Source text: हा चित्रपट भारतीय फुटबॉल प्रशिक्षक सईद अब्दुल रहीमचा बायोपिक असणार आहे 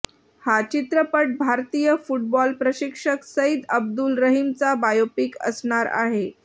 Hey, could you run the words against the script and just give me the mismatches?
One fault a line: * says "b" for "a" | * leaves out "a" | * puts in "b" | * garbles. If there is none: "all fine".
all fine